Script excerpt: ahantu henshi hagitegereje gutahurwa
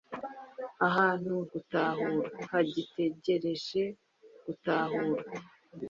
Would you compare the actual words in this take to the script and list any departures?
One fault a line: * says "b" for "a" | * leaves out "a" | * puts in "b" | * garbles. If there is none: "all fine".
* says "gutahurwa" for "henshi"